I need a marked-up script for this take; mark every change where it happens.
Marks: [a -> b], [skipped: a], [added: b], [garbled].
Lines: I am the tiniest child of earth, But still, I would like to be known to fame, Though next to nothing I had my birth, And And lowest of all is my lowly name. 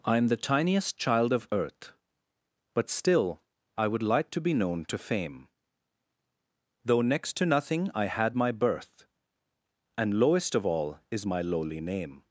I am the tiniest child of earth, But still, I would like to be known to fame, Though next to nothing I had my birth, And [skipped: And] lowest of all is my lowly name.